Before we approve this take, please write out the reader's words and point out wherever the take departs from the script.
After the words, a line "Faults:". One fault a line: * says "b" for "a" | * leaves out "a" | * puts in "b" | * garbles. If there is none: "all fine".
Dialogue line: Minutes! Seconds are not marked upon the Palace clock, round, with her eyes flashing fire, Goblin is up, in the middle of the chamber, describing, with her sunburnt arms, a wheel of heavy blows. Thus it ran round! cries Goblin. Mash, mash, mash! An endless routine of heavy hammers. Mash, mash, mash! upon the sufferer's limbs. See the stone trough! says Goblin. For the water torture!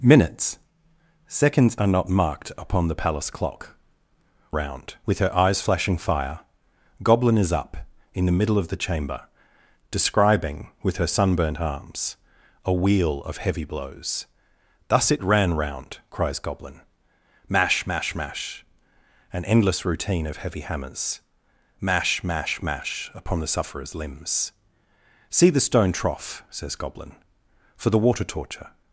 Minutes! Seconds are not marked upon the Palace clock, round, with her eyes flashing fire, Goblin is up, in the middle of the chamber, describing, with her sunburnt arms, a wheel of heavy blows. Thus it ran round! cries Goblin. Mash, mash, mash! An endless routine of heavy hammers. Mash, mash, mash! upon the sufferer's limbs. See the stone trough! says Goblin. For the water torture!
Faults:
all fine